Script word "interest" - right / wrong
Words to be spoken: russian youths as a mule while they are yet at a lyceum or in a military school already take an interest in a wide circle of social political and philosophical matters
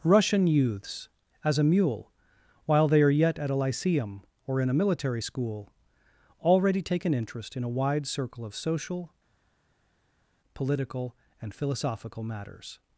right